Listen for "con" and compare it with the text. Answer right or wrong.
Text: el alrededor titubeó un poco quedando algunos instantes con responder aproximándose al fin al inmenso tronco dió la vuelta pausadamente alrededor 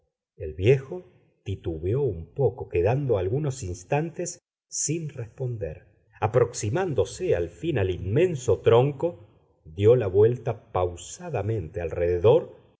wrong